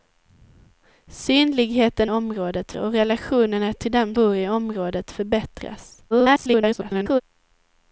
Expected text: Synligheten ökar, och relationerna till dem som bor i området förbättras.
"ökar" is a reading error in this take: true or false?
true